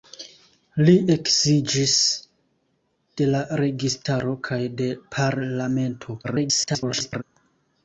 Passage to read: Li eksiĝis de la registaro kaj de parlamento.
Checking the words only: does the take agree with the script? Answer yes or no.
no